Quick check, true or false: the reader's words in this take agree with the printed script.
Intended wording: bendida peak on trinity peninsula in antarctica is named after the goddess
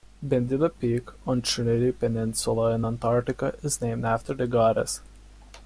true